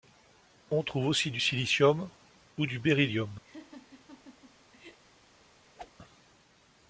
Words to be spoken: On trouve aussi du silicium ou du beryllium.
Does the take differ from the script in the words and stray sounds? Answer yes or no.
yes